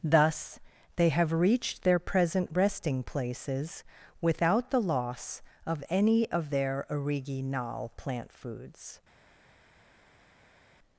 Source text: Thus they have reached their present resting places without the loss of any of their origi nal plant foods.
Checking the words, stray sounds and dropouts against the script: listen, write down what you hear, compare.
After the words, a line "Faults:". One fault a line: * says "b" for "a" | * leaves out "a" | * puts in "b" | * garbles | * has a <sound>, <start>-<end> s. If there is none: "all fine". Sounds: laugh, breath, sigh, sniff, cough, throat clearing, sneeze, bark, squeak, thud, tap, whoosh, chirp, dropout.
Thus they have reached their present resting places without the loss of any of their origi nal plant foods.
Faults:
all fine